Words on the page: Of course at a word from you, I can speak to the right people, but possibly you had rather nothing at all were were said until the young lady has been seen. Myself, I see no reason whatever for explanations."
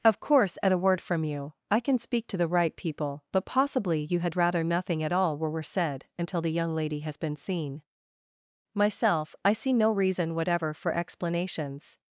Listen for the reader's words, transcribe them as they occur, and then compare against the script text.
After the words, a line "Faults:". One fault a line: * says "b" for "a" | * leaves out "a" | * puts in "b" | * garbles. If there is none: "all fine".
Of course at a word from you, I can speak to the right people, but possibly you had rather nothing at all were were said until the young lady has been seen. Myself, I see no reason whatever for explanations."
Faults:
all fine